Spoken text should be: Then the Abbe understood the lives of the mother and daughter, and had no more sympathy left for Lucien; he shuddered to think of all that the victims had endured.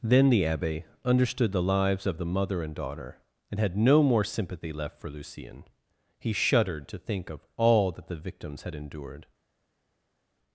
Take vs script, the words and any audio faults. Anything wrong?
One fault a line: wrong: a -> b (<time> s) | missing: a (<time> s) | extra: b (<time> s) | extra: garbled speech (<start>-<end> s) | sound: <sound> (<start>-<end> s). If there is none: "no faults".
no faults